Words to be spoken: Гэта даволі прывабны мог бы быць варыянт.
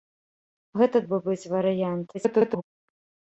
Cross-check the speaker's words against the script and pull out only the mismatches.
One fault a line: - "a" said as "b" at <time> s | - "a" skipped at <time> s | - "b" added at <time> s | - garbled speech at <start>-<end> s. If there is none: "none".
- "даволі прывабны мог" skipped at 1.0 s
- garbled speech at 2.1-2.6 s